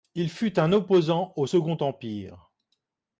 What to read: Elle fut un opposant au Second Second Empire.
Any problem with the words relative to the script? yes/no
yes